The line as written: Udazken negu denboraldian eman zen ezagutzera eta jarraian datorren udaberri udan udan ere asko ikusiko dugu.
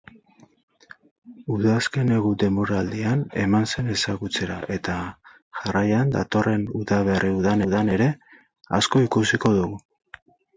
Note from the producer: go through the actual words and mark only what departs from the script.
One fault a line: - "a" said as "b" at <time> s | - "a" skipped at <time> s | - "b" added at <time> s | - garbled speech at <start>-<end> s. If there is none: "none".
none